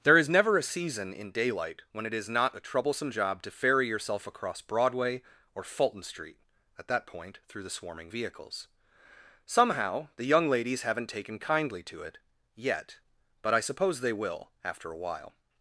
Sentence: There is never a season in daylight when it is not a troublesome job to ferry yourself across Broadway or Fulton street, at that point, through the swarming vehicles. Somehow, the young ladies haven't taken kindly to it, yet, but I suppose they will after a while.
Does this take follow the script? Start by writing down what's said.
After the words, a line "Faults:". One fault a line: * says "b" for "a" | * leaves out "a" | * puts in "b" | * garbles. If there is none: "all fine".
There is never a season in daylight when it is not a troublesome job to ferry yourself across Broadway or Fulton street, at that point, through the swarming vehicles. Somehow, the young ladies haven't taken kindly to it, yet, but I suppose they will after a while.
Faults:
all fine